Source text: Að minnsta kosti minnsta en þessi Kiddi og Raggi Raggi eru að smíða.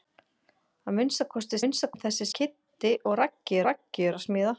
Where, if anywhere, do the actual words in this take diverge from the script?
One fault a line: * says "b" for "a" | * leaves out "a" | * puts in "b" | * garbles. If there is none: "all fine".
all fine